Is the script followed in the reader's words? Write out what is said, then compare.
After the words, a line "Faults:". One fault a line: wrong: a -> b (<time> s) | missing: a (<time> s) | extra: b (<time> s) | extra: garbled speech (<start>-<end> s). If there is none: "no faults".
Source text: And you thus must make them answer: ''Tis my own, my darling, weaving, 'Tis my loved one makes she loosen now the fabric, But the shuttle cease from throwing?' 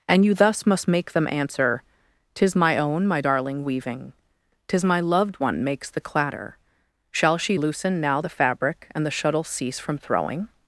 And you thus must make them answer: ''Tis my own, my darling, weaving, 'Tis my loved one makes the clatter, Shall she loosen now the fabric, And the shuttle cease from throwing?'
Faults:
extra: the clatter Shall (5.9 s)
wrong: But -> And (9.0 s)